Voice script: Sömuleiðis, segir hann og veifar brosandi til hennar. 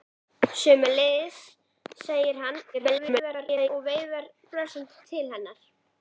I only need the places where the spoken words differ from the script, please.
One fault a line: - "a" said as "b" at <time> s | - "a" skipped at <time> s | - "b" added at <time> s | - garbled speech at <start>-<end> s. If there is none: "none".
- garbled speech at 2.7-3.7 s